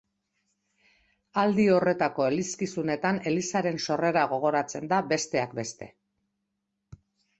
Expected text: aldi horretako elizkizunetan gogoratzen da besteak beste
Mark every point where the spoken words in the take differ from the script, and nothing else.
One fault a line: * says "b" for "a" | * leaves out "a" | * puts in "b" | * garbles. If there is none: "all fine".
* puts in "elizaren sorrera"